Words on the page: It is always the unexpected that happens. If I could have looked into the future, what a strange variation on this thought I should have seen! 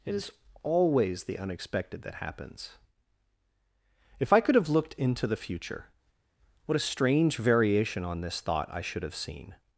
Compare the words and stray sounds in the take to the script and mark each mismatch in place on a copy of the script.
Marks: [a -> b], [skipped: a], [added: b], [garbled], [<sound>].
It is always the unexpected that happens. If I could have looked into the future, what a strange variation on this thought I should have seen!